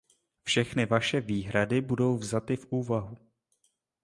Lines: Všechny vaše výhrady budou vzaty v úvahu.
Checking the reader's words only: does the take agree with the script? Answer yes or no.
yes